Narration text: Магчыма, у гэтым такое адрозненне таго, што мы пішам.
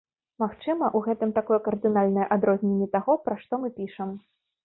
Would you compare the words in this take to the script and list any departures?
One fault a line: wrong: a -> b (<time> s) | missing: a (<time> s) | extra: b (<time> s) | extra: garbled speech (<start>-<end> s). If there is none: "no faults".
extra: кардынальнае (1.7 s)
extra: пра (3.3 s)